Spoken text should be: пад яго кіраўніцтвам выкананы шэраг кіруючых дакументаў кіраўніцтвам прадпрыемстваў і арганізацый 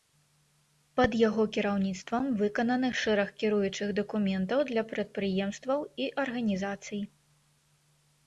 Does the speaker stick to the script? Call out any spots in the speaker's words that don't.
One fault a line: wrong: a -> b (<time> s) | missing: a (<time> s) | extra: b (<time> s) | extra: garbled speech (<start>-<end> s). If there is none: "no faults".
wrong: кіраўніцтвам -> для (4.7 s)